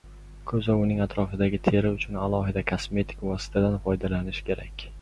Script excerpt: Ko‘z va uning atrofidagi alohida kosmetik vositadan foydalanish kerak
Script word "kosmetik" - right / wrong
right